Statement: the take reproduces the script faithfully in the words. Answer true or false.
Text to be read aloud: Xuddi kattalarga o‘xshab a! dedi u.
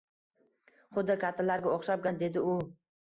true